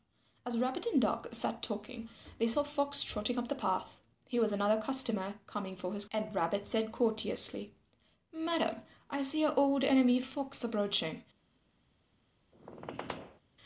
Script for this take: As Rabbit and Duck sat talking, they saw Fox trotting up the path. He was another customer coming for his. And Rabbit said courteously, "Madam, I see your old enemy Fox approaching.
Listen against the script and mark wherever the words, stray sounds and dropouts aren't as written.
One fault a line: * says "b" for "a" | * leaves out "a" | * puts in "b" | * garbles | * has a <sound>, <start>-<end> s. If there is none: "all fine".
* has a squeak, 12.5-13.4 s